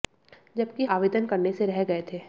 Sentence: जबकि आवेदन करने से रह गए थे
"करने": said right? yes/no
yes